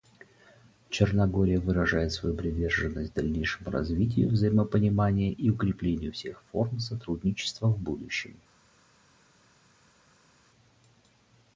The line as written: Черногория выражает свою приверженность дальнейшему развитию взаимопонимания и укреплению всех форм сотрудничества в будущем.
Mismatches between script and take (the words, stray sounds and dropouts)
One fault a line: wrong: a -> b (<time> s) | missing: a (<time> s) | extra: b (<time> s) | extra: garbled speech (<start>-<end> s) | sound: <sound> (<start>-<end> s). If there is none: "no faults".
no faults